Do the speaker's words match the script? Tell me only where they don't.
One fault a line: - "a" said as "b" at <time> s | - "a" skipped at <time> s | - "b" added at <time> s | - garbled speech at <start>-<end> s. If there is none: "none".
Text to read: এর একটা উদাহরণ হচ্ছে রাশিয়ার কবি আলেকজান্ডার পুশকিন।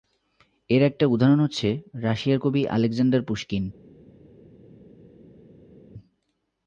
none